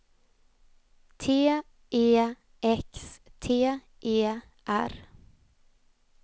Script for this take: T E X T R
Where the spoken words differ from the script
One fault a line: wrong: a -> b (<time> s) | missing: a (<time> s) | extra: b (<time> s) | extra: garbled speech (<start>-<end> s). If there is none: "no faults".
extra: E (4.0 s)